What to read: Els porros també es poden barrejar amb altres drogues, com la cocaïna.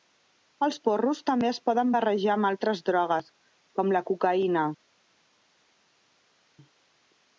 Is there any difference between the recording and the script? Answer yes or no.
no